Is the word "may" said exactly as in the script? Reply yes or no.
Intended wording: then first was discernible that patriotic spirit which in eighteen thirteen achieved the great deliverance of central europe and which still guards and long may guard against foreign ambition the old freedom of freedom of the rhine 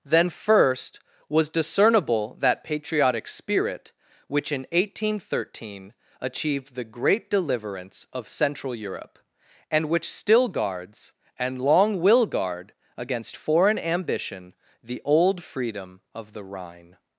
no